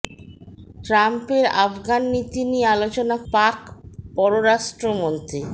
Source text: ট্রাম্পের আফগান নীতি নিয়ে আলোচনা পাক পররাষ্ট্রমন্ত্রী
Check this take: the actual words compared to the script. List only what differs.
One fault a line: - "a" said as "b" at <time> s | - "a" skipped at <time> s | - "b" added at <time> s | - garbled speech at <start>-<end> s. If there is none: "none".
none